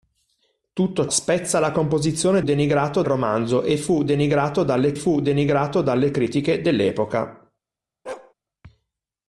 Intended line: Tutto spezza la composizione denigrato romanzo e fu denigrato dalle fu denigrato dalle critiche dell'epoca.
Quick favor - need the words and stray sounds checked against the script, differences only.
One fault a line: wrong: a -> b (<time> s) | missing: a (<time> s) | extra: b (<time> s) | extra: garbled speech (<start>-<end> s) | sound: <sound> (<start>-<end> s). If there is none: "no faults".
sound: bark (8.1-8.3 s)